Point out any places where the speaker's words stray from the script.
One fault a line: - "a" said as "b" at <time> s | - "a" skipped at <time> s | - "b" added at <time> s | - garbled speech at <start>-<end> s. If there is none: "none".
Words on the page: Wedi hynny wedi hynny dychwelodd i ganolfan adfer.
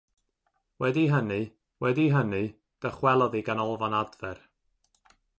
none